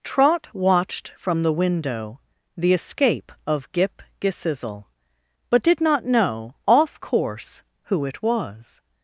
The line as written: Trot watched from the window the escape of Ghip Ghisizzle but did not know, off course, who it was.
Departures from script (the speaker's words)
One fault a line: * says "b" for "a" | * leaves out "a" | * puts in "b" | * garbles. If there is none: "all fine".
all fine